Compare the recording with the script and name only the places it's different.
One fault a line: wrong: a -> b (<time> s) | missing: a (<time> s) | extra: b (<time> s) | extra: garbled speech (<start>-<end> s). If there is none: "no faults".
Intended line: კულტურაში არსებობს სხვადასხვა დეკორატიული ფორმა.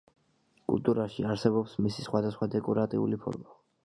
extra: მისი (1.9 s)